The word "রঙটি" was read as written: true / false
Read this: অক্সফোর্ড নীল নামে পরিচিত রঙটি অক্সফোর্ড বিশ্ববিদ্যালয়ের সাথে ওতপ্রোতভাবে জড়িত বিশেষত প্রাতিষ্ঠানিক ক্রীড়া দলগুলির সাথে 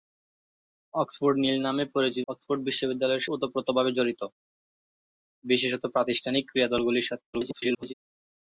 false